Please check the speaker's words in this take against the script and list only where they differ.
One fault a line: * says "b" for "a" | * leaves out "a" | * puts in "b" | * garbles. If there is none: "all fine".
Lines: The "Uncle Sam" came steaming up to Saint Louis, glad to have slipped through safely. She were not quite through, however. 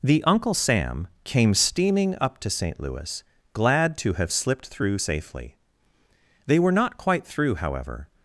* says "They" for "She"